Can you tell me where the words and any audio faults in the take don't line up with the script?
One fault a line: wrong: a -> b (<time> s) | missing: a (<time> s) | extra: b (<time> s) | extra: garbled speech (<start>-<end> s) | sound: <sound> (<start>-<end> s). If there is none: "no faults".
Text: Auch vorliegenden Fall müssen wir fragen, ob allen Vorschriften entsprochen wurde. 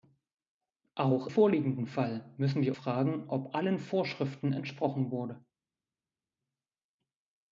no faults